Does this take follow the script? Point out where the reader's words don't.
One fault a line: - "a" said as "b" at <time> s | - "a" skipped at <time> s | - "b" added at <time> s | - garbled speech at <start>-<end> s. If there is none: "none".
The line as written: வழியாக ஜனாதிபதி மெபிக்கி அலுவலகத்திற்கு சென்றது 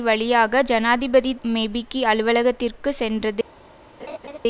none